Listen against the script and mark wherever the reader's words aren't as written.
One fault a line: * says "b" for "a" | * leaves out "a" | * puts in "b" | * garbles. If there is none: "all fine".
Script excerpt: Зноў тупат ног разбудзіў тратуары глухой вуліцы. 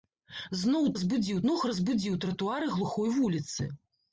* says "разбудзіў" for "тупат"